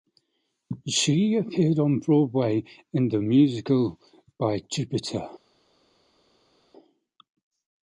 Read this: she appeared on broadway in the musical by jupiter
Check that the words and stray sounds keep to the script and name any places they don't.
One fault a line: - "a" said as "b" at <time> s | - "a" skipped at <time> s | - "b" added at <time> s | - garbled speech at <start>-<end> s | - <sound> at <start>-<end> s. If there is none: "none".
none